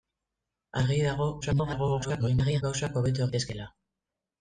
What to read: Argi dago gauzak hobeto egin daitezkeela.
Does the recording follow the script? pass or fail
fail